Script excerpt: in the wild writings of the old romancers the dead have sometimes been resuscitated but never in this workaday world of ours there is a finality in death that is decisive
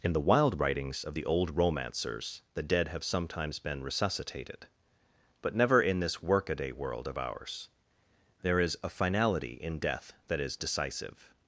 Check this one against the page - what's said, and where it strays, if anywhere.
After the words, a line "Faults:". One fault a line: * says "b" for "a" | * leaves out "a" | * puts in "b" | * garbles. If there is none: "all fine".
in the wild writings of the old romancers the dead have sometimes been resuscitated but never in this workaday world of ours there is a finality in death that is decisive
Faults:
all fine